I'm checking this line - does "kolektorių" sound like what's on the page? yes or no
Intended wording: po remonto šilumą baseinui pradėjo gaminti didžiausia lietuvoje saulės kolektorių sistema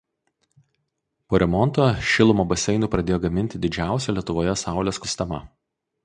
no